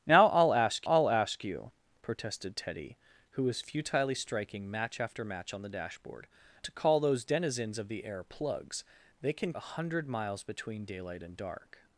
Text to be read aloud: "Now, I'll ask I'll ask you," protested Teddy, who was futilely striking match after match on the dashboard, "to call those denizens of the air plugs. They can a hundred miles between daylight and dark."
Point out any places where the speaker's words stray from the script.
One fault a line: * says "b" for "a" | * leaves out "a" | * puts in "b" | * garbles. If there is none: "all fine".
all fine